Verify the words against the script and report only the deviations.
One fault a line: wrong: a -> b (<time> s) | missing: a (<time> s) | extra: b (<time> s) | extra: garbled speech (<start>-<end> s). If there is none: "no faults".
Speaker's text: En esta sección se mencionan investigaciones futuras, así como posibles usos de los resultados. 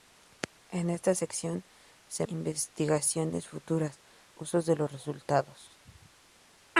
missing: mencionan (2.2 s)
missing: así como posibles (4.0 s)